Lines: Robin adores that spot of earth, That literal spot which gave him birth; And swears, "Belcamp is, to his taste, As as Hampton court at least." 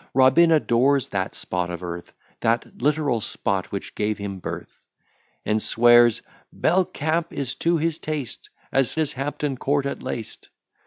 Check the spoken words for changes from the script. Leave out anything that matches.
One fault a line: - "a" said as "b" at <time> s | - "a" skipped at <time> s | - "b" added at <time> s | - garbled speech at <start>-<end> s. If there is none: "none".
none